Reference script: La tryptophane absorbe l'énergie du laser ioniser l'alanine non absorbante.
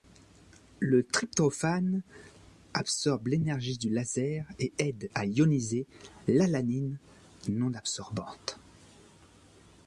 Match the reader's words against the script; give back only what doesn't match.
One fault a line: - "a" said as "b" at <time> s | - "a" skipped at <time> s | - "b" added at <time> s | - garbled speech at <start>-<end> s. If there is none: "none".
- "La" said as "Le" at 0.8 s
- "et aide à" added at 4.6 s